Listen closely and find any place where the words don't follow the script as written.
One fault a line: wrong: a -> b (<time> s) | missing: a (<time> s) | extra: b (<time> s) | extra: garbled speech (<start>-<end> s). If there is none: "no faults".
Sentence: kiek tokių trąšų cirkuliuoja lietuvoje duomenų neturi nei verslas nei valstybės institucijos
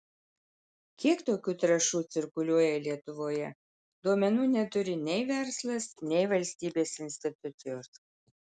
no faults